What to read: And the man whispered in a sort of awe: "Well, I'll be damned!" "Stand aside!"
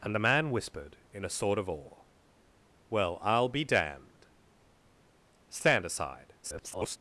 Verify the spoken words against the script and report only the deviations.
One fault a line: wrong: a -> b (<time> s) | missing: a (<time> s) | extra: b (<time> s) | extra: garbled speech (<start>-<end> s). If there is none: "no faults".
extra: garbled speech (6.4-7.0 s)